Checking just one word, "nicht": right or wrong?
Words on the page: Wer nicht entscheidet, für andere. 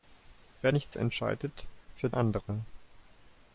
right